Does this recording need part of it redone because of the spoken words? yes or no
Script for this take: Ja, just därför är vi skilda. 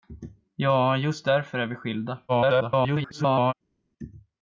yes